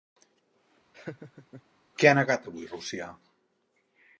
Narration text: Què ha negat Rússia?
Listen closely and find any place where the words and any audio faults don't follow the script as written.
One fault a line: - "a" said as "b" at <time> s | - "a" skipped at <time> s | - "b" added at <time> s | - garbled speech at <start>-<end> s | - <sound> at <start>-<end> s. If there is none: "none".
- laugh at 0.9-1.6 s
- "avui" added at 2.5 s